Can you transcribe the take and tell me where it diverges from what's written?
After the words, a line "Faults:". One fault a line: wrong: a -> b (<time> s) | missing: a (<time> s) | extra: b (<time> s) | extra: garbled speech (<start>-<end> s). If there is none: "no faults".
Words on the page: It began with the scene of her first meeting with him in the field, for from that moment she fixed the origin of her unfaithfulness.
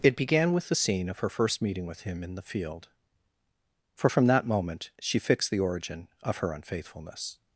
It began with the scene of her first meeting with him in the field, for from that moment she fixed the origin of her unfaithfulness.
Faults:
no faults